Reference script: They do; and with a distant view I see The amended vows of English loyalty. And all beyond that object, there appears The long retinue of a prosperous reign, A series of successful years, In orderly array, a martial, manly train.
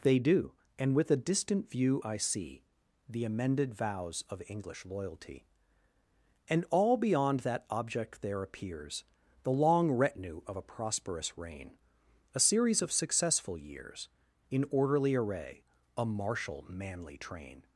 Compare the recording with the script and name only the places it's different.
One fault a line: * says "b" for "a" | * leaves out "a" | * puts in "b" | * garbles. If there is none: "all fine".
all fine